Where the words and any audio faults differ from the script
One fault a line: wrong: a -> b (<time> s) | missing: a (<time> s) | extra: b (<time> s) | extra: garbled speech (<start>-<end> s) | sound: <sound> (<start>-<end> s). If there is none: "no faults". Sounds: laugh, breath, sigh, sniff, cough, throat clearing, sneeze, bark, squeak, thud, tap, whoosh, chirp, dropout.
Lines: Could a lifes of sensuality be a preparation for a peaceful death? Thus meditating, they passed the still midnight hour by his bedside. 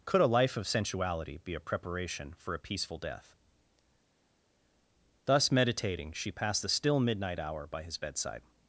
wrong: lifes -> life (0.3 s)
wrong: they -> she (6.1 s)